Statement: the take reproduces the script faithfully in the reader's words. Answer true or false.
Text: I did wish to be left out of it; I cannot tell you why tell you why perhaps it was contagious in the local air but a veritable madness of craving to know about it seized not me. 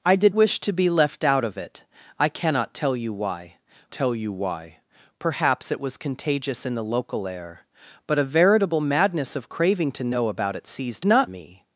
true